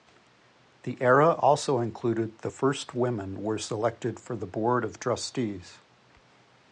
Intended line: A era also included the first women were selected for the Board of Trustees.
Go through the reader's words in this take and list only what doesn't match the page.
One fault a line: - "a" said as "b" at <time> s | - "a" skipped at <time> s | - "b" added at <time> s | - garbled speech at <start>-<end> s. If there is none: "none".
- "A" said as "The" at 0.8 s